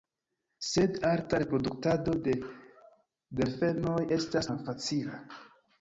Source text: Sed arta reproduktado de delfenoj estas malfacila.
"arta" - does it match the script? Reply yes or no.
yes